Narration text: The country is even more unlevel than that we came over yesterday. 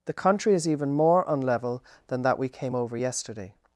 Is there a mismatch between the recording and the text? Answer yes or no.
no